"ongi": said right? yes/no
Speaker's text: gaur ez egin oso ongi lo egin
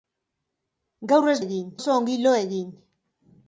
yes